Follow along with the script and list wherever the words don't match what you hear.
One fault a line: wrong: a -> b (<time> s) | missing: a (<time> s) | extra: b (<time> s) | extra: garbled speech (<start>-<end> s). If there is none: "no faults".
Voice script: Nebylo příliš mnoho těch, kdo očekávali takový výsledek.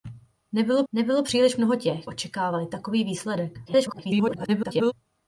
extra: nebylo (0.9 s)
missing: kdo (2.1 s)
extra: garbled speech (3.7-4.9 s)